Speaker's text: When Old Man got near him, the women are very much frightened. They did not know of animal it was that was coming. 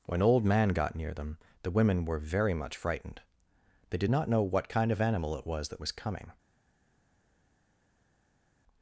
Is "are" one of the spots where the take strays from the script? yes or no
yes